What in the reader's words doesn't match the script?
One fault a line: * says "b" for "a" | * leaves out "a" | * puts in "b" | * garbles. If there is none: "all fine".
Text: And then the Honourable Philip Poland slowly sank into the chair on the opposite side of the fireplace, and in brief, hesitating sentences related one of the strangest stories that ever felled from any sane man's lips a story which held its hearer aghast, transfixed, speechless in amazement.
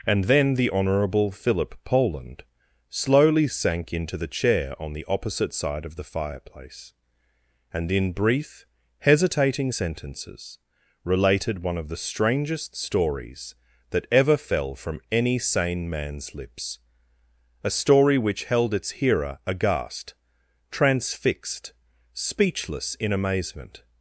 * says "fell" for "felled"